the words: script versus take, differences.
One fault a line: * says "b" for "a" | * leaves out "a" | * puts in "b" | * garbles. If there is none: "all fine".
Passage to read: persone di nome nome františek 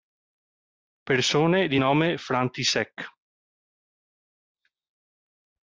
* leaves out "nome"